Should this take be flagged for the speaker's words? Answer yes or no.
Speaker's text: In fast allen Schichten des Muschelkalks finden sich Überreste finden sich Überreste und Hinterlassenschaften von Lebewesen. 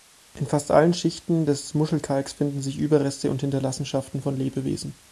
yes